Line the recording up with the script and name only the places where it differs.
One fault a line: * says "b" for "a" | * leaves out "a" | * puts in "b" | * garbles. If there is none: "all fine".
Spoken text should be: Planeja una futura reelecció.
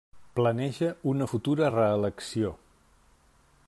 all fine